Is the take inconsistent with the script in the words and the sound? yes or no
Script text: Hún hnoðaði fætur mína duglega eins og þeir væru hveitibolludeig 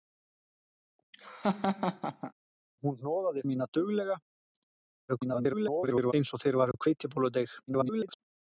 yes